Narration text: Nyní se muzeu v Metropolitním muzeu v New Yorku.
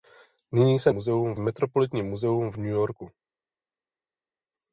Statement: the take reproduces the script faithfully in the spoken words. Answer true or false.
true